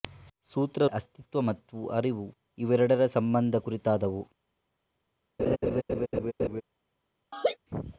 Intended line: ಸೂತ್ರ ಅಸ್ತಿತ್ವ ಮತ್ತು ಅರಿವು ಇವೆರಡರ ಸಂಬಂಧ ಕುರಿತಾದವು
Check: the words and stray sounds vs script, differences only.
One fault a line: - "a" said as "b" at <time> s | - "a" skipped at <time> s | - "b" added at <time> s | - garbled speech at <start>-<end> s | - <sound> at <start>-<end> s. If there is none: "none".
- laugh at 5.4-6.6 s
- laugh at 7.3-7.6 s